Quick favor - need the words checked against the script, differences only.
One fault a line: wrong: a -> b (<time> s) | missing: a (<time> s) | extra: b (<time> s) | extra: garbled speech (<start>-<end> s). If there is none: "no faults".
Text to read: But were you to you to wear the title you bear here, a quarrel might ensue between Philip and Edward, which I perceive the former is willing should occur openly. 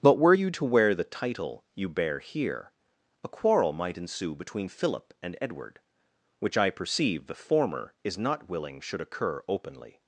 missing: you to (0.6 s)
extra: not (8.2 s)